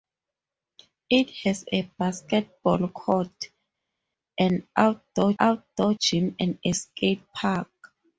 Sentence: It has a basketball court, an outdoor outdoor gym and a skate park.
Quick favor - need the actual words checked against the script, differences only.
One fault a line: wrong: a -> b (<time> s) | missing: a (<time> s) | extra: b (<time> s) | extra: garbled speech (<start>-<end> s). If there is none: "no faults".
no faults